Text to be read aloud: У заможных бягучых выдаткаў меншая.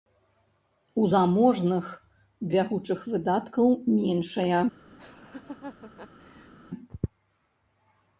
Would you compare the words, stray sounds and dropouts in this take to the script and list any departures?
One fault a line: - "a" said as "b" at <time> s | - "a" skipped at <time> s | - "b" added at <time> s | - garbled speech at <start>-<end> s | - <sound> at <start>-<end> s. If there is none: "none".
- laugh at 5.0-6.5 s